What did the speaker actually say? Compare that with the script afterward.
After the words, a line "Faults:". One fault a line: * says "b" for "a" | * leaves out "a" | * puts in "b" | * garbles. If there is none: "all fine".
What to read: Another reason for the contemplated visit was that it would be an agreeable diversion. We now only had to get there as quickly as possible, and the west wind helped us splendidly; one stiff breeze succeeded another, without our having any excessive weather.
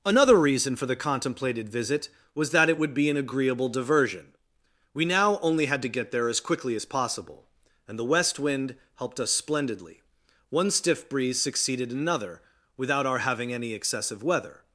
Another reason for the contemplated visit was that it would be an agreeable diversion. We now only had to get there as quickly as possible, and the west wind helped us splendidly; one stiff breeze succeeded another, without our having any excessive weather.
Faults:
all fine